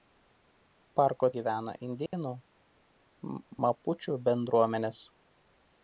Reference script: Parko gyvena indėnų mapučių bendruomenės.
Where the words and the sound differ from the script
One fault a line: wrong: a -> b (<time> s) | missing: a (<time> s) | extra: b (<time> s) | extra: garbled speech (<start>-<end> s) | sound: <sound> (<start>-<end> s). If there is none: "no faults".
sound: dropout (2.1-2.1 s)